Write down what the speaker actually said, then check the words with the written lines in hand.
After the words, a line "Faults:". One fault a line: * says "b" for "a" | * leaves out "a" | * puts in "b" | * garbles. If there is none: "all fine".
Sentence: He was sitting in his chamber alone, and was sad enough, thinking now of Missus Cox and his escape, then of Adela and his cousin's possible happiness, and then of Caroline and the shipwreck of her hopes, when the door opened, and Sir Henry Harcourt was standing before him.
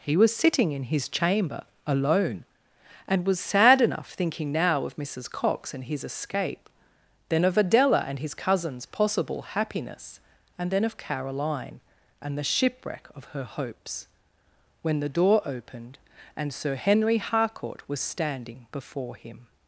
He was sitting in his chamber alone, and was sad enough, thinking now of Missus Cox and his escape, then of Adela and his cousin's possible happiness, and then of Caroline and the shipwreck of her hopes, when the door opened, and Sir Henry Harcourt was standing before him.
Faults:
all fine